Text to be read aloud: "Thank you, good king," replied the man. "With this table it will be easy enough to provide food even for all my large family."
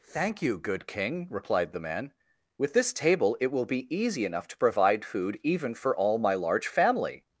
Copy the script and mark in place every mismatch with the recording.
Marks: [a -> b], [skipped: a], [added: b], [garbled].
"Thank you, good king," replied the man. "With this table it will be easy enough to provide food even for all my large family."